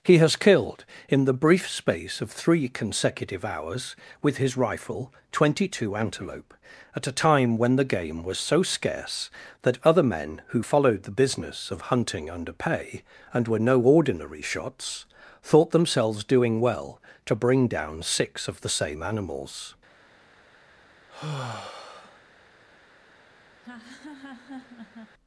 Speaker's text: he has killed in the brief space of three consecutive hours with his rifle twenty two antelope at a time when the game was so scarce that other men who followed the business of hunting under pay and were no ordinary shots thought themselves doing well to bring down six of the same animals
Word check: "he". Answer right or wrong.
right